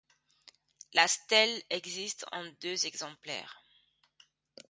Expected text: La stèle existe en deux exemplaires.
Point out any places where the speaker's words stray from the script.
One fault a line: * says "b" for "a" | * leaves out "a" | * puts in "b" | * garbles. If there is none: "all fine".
all fine